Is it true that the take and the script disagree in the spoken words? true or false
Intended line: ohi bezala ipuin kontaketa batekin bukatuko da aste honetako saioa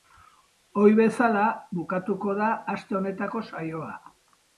true